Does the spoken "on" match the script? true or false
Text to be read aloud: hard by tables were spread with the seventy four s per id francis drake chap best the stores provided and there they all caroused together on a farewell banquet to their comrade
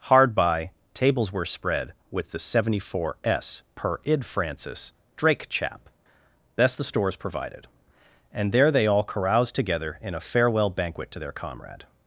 false